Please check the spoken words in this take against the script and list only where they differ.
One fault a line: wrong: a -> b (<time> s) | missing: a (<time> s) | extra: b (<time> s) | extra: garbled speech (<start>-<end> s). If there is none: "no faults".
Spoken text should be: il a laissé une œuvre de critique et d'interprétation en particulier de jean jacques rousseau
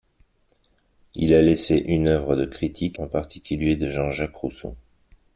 missing: et d'interprétation (3.0 s)